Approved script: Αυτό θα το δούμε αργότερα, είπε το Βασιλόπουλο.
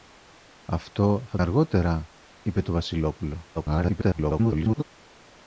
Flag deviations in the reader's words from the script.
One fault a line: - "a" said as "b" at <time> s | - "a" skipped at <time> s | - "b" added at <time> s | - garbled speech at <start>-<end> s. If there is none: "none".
- "το δούμε" skipped at 1.4 s
- garbled speech at 3.5-4.8 s